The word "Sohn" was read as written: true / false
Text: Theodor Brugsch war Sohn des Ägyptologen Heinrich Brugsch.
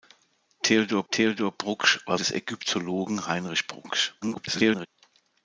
false